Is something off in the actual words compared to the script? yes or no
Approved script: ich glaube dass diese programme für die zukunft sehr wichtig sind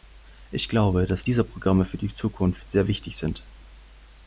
no